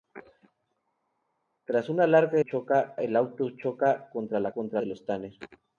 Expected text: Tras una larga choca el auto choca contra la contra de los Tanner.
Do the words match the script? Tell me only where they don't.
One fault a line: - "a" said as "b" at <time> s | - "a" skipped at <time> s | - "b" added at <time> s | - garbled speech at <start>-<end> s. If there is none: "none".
none